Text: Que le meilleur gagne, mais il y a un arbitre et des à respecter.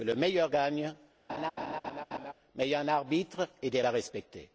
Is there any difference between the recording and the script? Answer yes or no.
no